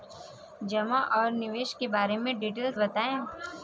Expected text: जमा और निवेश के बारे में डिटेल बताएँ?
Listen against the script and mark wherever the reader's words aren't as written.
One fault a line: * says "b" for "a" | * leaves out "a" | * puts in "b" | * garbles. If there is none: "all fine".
all fine